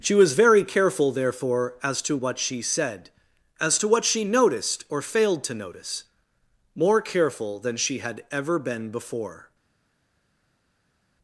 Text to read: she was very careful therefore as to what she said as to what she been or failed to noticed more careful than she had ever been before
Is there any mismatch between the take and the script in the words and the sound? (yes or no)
yes